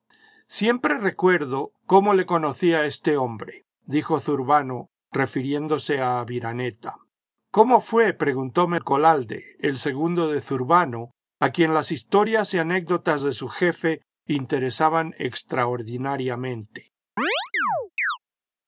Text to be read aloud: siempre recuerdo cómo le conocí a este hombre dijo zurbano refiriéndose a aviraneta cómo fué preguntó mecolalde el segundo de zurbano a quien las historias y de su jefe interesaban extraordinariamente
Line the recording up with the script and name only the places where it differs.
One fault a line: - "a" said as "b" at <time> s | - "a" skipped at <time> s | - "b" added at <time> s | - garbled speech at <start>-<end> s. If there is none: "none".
- "anécdotas" added at 12.6 s